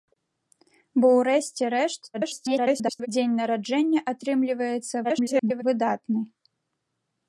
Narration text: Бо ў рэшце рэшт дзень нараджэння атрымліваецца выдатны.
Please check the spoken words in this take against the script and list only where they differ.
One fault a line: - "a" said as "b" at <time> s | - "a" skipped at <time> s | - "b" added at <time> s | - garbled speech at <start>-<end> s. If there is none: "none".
- garbled speech at 2.1-3.1 s
- garbled speech at 5.0-5.6 s